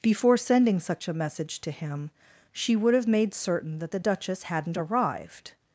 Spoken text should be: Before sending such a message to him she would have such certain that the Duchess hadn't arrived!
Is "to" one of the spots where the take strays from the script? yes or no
no